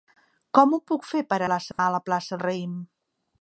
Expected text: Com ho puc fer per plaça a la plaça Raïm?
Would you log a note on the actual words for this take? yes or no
no